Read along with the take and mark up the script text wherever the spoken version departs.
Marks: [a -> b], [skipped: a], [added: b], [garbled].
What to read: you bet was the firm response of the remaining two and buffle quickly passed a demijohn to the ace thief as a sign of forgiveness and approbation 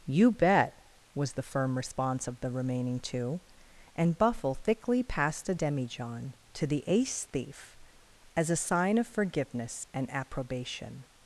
you bet was the firm response of the remaining two and buffle [quickly -> thickly] passed a demijohn to the ace thief as a sign of forgiveness and approbation